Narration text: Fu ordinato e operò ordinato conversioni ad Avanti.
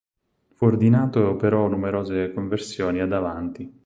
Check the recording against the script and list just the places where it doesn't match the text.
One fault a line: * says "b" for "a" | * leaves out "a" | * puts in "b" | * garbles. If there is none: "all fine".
* says "numerose" for "ordinato"